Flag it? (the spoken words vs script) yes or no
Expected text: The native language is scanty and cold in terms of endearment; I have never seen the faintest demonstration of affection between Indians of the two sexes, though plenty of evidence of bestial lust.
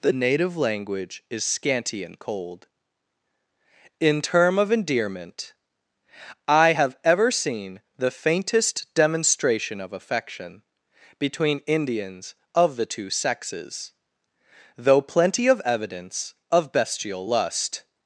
yes